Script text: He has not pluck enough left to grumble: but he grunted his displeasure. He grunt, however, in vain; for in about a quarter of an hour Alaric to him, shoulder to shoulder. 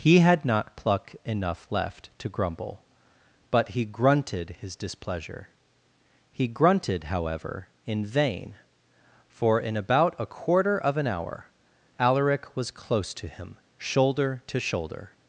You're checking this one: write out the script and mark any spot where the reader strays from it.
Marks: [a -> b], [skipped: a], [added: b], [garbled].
He [has -> had] not pluck enough left to grumble: but he grunted his displeasure. He [grunt, -> grunted] however, in vain; for in about a quarter of an hour Alaric [added: was close] to him, shoulder to shoulder.